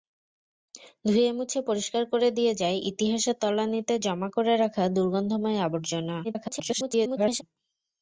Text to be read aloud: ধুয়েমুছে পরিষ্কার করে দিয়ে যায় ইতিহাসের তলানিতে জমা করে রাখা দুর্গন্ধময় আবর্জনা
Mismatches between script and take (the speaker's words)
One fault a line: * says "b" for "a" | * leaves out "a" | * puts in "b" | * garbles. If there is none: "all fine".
* garbles